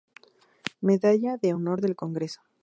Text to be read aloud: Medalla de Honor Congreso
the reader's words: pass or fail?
fail